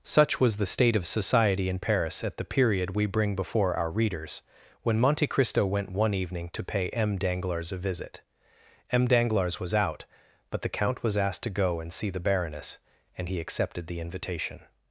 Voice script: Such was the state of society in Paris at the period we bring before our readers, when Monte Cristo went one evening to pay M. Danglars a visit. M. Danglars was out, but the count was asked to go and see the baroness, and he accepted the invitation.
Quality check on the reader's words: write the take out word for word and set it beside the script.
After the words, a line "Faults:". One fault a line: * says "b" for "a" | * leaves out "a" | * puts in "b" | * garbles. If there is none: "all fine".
Such was the state of society in Paris at the period we bring before our readers, when Monte Cristo went one evening to pay M. Danglars a visit. M. Danglars was out, but the count was asked to go and see the baroness, and he accepted the invitation.
Faults:
all fine